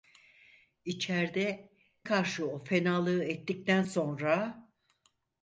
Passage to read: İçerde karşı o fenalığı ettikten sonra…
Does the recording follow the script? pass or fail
pass